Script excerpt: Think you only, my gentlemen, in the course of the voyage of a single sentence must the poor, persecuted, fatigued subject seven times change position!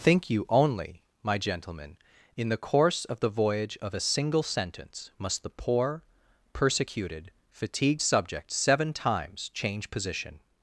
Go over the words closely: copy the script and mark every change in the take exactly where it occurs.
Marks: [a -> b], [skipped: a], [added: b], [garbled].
Think you only, my gentlemen, in the course of the voyage of a single sentence must the poor, persecuted, fatigued subject seven times change position!